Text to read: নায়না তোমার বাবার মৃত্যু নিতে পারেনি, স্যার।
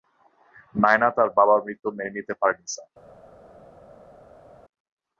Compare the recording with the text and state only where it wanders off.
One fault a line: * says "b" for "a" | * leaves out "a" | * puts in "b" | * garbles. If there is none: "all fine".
* says "তার" for "তোমার"
* puts in "মেনে"